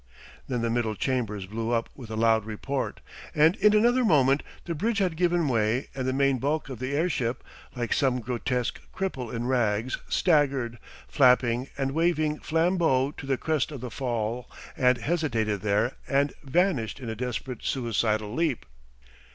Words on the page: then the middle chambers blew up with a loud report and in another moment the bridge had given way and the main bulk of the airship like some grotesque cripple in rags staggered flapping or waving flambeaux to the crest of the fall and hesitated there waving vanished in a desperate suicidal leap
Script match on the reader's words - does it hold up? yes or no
no